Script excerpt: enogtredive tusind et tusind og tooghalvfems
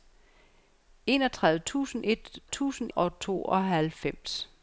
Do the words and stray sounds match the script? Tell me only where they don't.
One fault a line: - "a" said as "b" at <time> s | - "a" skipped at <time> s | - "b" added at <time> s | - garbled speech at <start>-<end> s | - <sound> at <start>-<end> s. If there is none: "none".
none